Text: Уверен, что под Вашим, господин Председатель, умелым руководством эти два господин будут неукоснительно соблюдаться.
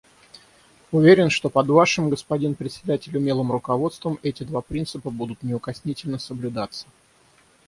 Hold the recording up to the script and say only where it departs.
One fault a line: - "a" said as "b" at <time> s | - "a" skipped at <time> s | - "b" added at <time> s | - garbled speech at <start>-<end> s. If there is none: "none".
- "господин" said as "принципа" at 4.6 s